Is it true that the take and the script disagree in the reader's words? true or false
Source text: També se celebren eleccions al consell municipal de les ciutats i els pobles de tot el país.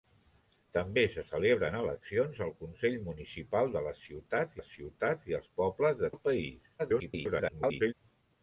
true